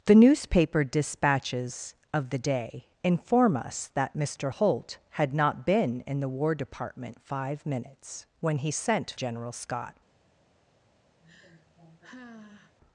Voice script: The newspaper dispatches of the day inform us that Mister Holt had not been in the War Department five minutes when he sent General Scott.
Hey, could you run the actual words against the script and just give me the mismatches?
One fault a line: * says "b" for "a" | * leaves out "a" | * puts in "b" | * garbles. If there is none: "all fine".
all fine